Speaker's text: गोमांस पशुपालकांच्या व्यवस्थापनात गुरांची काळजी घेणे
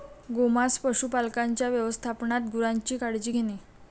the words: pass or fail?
pass